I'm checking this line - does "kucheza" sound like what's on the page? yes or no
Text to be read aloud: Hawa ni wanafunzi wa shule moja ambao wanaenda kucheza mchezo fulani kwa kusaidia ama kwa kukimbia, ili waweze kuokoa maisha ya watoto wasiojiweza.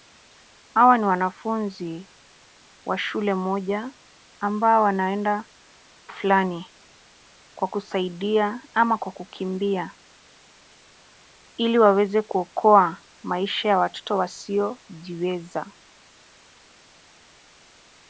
no